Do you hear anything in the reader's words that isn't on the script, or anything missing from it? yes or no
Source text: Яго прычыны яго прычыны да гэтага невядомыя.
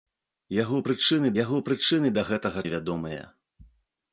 no